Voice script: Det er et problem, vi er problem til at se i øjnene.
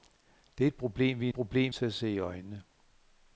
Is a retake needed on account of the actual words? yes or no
no